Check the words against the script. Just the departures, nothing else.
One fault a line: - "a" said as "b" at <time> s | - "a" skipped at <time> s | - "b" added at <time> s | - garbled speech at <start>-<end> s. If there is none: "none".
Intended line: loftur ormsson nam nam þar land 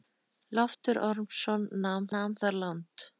none